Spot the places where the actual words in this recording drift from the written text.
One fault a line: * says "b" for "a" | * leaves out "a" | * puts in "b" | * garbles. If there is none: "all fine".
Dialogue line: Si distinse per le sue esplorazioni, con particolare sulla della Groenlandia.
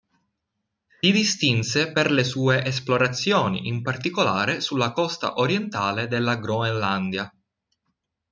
* says "in" for "con"
* puts in "costa orientale"